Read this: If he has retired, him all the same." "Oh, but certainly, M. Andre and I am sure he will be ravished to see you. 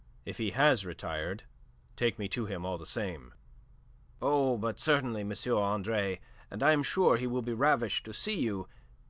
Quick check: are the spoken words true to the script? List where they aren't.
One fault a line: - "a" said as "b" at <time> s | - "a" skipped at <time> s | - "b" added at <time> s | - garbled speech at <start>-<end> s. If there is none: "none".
- "take me to" added at 1.9 s